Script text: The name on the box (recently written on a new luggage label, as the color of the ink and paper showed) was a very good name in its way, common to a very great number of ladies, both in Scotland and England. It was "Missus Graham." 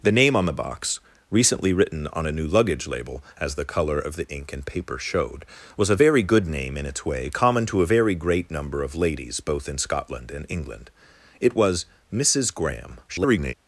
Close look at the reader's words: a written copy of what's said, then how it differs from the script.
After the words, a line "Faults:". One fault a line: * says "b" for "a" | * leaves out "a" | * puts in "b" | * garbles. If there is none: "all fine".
The name on the box (recently written on a new luggage label, as the color of the ink and paper showed) was a very good name in its way, common to a very great number of ladies, both in Scotland and England. It was "Missus Graham." [garbled]
Faults:
* garbles